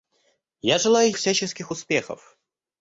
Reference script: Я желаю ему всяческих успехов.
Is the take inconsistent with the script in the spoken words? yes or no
yes